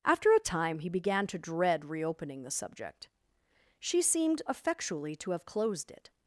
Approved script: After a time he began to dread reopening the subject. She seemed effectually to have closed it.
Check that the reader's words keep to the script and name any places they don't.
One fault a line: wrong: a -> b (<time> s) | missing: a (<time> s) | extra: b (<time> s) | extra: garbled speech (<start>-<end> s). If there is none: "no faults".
no faults